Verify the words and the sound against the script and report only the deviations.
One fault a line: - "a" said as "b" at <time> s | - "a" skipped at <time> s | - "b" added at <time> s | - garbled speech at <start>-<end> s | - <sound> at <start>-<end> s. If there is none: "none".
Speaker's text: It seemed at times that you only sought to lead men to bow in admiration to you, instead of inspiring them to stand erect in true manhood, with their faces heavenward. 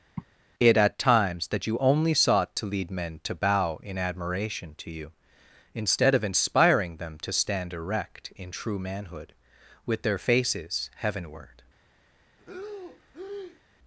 - sigh at 0.2-0.2 s
- "seemed" skipped at 0.7 s
- breath at 12.4-13.6 s